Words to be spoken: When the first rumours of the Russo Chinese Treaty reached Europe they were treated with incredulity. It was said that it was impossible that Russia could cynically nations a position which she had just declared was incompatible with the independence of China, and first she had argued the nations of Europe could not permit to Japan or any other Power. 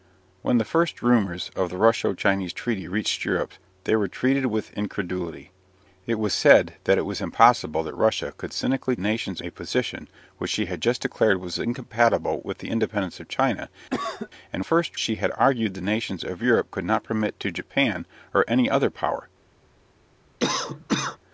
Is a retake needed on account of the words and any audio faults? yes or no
yes